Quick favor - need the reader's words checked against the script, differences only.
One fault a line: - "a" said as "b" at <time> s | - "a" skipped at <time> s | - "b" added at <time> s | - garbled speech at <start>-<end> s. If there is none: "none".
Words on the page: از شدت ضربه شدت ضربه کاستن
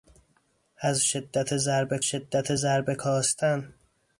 none